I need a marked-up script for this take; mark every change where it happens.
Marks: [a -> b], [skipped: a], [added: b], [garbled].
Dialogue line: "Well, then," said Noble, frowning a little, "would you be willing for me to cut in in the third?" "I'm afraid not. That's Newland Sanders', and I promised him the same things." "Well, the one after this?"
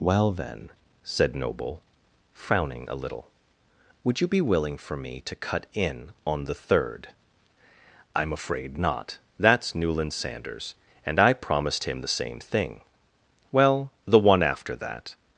"Well, then," said Noble, frowning a little, "would you be willing for me to cut in [in -> on] the third?" "I'm afraid not. That's Newland Sanders', and I promised him the same [things." -> thing] "Well, the one after [this?" -> that]